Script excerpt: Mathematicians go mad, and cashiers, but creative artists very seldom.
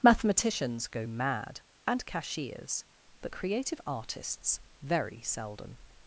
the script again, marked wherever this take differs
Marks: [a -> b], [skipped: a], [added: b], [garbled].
Mathematicians go mad, and cashiers, but creative artists very seldom.